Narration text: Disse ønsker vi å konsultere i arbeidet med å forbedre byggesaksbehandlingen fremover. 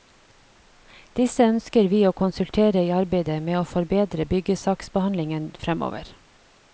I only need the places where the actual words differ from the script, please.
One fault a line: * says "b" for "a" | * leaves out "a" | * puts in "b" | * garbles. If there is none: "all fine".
all fine